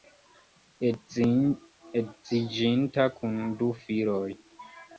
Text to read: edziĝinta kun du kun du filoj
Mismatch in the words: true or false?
true